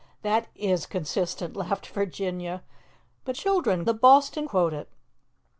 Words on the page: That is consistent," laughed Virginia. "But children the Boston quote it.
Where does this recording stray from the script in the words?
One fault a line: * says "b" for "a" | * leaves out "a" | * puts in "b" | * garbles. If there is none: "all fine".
all fine